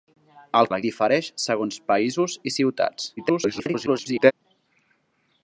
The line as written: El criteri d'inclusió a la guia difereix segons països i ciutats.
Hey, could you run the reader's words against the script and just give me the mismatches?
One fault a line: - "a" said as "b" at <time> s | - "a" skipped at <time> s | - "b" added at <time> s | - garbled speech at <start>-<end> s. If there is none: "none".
- "criteri d'inclusió" skipped at 0.7 s
- "guia" skipped at 0.8 s
- garbled speech at 3.2-4.3 s